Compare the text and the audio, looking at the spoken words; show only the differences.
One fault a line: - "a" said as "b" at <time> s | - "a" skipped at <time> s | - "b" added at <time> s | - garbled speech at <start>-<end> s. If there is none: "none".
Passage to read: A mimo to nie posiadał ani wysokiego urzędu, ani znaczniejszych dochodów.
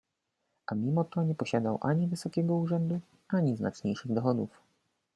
none